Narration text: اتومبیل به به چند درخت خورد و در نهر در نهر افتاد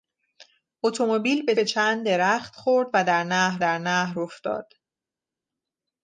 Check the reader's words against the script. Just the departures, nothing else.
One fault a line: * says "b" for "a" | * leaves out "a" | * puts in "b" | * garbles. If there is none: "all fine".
all fine